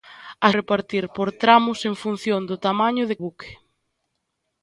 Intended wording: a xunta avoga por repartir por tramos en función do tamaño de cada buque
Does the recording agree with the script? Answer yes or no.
no